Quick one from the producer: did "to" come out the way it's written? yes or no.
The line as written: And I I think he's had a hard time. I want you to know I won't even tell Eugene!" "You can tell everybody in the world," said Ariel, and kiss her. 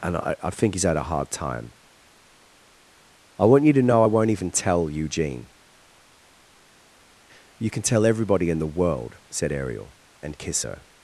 yes